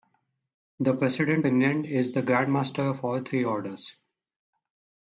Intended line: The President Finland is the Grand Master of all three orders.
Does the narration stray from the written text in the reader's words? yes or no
no